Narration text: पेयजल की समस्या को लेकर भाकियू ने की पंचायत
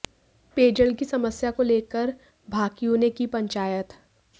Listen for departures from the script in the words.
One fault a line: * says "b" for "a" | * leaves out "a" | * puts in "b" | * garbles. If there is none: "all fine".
all fine